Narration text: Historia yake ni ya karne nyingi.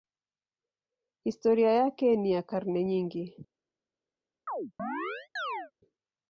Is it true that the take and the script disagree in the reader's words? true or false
false